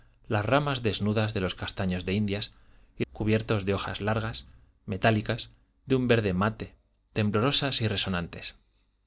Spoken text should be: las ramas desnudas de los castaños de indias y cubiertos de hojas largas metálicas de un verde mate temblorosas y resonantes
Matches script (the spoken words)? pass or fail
pass